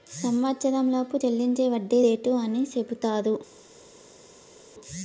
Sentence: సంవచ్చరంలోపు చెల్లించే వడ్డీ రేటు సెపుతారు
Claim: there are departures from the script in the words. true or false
true